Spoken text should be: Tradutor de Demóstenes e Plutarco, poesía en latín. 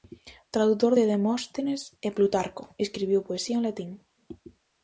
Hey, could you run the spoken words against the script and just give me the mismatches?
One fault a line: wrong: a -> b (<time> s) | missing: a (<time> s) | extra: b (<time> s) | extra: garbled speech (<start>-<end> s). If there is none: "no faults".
extra: escribiu (2.9 s)